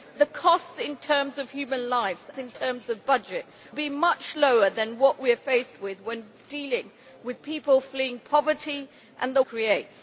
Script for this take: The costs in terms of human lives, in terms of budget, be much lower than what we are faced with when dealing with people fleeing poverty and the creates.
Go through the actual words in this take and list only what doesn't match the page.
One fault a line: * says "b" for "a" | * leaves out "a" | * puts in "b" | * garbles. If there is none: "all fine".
all fine